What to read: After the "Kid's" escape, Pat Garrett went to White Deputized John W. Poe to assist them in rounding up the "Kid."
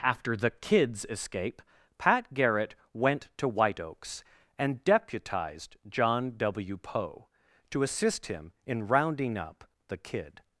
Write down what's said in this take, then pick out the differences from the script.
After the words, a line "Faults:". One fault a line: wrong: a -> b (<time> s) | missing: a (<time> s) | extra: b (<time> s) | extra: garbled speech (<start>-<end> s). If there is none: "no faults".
After the "Kid's" escape, Pat Garrett went to White Oaks and deputized John W. Poe to assist him in rounding up the "Kid."
Faults:
extra: Oaks and (3.8 s)
wrong: them -> him (8.2 s)